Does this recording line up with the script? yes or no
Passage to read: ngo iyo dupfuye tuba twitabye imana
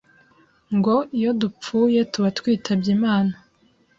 yes